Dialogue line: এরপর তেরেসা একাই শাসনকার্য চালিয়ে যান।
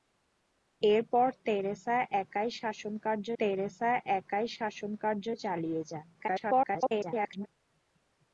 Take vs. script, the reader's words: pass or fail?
fail